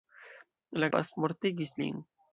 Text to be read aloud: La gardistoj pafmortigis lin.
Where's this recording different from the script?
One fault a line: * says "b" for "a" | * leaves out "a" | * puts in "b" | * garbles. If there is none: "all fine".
* leaves out "gardistoj"